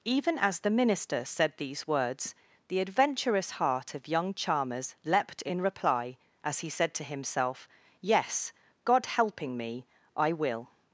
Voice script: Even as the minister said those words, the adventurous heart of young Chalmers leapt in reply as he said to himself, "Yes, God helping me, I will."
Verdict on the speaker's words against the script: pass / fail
fail